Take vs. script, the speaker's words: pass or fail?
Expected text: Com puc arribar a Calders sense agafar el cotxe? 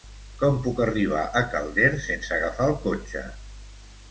pass